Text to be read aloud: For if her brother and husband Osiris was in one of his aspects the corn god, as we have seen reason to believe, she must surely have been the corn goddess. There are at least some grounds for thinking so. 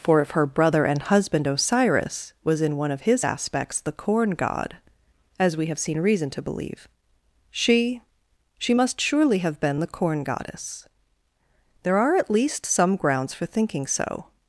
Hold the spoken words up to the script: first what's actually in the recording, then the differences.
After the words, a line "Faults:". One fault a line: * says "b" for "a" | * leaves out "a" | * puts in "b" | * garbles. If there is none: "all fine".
For if her brother and husband Osiris was in one of his aspects the corn god, as we have seen reason to believe, she she must surely have been the corn goddess. There are at least some grounds for thinking so.
Faults:
* puts in "she"